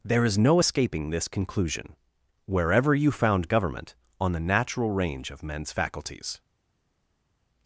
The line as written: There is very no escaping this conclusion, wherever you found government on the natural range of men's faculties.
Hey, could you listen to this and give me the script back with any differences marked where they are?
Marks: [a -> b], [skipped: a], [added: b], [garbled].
There is [skipped: very] no escaping this conclusion, wherever you found government on the natural range of men's faculties.